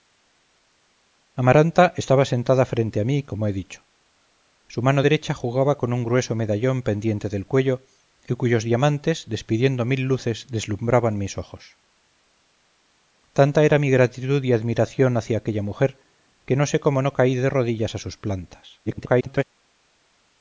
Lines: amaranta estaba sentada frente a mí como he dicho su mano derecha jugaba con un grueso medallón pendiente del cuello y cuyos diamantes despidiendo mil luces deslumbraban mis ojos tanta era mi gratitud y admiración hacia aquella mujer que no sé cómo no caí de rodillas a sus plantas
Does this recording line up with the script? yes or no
no